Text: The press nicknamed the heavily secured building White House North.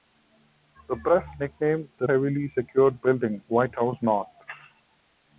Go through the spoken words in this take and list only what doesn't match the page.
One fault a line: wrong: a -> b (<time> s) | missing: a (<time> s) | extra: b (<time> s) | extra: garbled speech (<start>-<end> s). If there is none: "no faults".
no faults